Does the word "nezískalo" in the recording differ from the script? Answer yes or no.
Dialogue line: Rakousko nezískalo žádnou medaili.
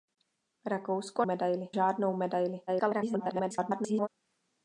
yes